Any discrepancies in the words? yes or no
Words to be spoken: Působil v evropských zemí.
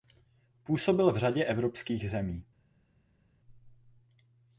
yes